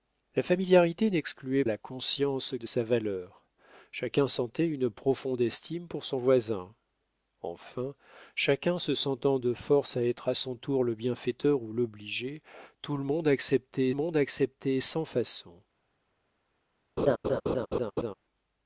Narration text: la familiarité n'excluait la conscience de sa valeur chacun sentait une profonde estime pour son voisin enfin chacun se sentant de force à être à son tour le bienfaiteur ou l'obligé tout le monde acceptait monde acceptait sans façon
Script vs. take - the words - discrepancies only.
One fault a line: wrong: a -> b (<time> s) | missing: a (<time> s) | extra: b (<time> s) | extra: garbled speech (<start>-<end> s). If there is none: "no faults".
no faults